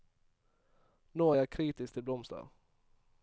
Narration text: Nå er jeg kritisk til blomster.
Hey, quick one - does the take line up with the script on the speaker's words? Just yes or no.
yes